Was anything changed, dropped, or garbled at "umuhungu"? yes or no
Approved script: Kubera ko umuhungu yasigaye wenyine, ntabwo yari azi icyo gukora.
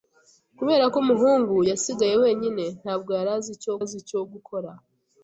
no